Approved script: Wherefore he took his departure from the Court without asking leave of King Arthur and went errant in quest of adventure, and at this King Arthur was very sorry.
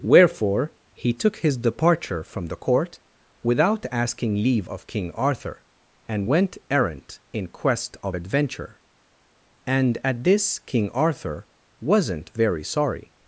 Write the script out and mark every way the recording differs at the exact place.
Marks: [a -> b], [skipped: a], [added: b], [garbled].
Wherefore he took his departure from the Court without asking leave of King Arthur and went errant in quest of adventure, and at this King Arthur [was -> wasn't] very sorry.